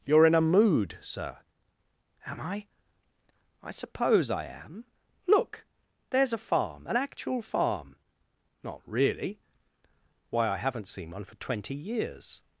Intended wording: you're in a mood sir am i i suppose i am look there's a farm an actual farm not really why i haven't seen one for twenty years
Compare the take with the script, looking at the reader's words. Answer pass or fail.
pass